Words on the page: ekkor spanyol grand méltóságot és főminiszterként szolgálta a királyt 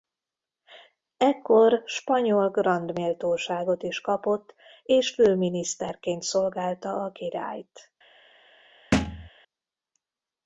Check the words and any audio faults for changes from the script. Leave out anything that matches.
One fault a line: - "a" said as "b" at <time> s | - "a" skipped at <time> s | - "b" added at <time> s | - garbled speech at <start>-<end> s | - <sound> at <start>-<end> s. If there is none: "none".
- "is kapott" added at 3.8 s
- thud at 8.9-9.3 s